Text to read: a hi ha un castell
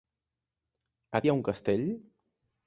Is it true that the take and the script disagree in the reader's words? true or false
false